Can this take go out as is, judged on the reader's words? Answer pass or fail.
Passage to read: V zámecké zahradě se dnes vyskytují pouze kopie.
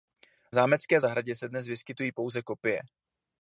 pass